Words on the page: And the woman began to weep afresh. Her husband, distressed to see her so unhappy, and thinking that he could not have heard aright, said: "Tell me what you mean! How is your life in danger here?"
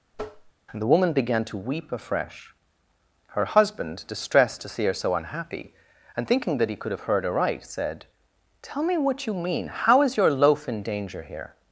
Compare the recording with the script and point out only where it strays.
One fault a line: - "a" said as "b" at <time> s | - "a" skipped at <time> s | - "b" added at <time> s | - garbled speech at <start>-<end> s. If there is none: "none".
- "not" skipped at 6.9 s
- "life" said as "loaf" at 10.3 s